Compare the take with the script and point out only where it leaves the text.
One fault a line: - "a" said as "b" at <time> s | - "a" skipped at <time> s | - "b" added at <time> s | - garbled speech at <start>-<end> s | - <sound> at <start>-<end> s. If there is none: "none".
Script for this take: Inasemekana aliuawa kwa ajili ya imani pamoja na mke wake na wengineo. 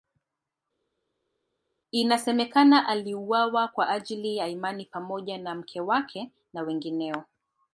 none